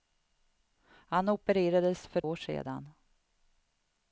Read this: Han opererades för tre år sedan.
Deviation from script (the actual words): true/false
true